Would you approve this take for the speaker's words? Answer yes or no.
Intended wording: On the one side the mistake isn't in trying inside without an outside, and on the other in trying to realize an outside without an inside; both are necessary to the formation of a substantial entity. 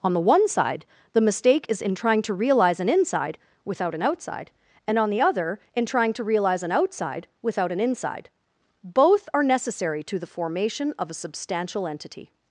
no